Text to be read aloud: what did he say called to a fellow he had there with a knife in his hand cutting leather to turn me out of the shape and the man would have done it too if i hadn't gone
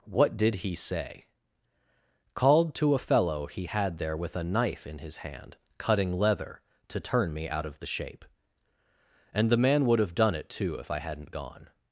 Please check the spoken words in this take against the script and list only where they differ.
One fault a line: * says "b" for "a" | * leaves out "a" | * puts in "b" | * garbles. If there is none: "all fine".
all fine